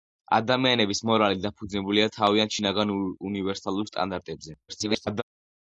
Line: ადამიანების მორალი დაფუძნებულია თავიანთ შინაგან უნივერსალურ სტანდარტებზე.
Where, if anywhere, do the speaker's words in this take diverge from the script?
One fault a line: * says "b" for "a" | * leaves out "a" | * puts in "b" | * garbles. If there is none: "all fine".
* garbles